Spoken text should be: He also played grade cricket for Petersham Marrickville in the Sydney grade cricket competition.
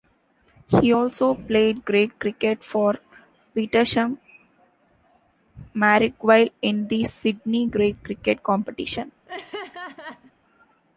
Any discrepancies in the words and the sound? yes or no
yes